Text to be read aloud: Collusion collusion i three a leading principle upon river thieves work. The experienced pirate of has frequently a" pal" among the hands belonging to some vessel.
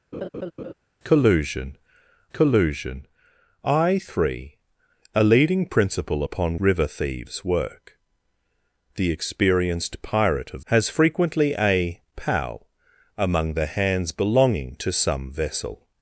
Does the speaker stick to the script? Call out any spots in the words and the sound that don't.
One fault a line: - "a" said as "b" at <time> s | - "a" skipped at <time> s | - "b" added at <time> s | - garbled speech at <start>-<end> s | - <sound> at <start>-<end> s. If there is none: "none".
- laugh at 0.1-0.7 s